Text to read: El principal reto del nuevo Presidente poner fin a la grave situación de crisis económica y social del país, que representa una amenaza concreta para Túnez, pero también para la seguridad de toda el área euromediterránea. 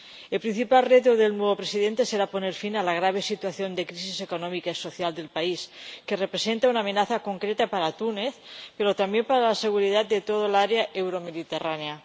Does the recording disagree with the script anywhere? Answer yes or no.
yes